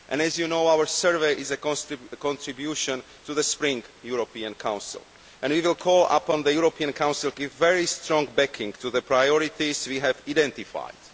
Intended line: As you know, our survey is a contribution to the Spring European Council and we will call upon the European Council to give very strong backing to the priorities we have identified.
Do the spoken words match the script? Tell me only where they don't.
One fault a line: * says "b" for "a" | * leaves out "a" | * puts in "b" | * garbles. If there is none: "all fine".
* leaves out "to"